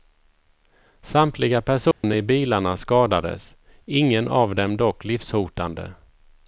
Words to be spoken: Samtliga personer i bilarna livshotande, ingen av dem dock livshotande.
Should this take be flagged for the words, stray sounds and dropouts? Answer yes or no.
yes